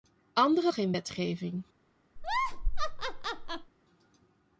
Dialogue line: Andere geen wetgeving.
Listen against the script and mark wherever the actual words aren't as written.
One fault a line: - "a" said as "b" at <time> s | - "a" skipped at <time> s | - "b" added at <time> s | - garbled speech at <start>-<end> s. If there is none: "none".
none